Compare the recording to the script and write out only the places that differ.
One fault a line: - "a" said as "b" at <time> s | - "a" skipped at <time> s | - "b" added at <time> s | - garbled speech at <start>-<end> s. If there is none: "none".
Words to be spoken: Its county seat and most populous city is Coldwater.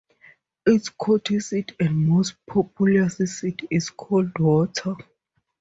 none